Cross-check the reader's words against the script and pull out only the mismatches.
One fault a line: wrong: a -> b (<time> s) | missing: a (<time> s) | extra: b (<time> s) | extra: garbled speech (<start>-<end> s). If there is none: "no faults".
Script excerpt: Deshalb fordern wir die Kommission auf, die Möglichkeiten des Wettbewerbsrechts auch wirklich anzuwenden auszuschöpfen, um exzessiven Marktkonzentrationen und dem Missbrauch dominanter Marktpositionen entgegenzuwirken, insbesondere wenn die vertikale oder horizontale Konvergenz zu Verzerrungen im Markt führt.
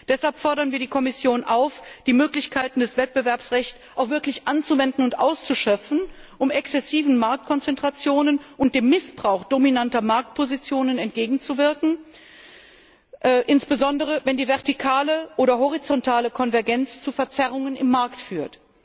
extra: und (5.0 s)